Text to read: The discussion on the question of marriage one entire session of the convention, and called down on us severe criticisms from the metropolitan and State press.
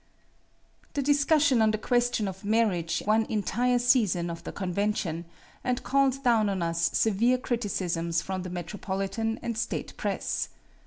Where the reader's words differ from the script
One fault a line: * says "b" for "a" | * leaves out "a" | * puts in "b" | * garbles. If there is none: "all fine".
all fine